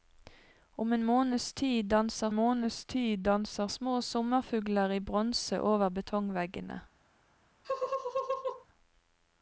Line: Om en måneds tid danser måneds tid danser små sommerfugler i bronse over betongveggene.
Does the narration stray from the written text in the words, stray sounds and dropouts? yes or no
yes